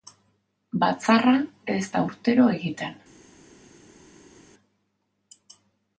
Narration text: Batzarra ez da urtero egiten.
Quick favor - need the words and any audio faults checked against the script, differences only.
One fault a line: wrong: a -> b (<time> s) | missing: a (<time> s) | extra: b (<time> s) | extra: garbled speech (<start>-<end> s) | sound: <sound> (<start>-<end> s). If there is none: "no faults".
no faults